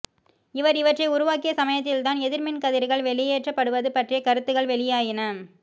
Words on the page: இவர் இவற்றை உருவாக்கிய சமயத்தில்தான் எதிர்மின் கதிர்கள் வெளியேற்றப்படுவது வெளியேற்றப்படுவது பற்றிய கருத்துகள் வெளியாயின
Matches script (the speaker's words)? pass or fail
fail